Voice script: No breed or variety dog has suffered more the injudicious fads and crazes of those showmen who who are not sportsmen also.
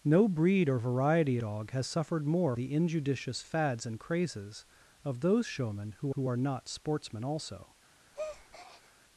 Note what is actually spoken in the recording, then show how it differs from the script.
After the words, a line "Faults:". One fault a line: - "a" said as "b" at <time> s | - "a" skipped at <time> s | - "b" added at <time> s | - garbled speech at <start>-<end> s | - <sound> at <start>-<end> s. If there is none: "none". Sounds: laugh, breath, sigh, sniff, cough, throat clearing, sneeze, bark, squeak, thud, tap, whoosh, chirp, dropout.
No breed or variety dog has suffered more the injudicious fads and crazes of those showmen who who are not sportsmen also.
Faults:
- breath at 8.1-8.9 s